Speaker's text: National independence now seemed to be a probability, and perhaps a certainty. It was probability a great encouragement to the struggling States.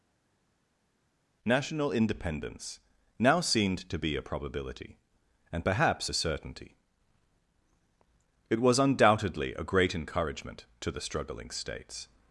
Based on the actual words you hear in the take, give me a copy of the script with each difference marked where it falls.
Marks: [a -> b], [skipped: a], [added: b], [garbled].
National independence now seemed to be a probability, and perhaps a certainty. It was [probability -> undoubtedly] a great encouragement to the struggling States.